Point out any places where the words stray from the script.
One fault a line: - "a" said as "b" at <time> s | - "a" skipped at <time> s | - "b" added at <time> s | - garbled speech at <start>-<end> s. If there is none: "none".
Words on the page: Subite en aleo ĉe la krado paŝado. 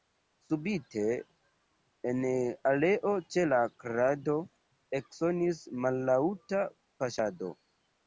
- "eksonis mallaŭta" added at 5.0 s